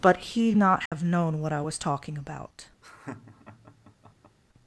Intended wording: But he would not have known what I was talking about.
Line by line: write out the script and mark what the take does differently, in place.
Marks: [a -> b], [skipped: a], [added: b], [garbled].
But he [skipped: would] not have known what I was talking about.